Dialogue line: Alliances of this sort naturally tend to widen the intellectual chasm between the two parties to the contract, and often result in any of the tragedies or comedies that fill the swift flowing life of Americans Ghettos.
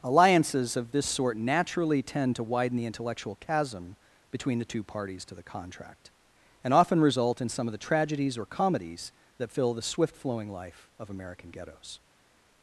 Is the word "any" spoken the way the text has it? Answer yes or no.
no